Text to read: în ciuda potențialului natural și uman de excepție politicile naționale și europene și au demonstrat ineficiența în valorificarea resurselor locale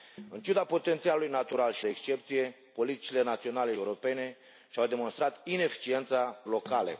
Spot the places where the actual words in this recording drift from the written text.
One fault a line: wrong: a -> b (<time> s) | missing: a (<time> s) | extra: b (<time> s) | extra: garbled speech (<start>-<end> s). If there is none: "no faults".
missing: uman (1.9 s)
missing: și (3.7 s)
missing: în valorificarea resurselor (6.4 s)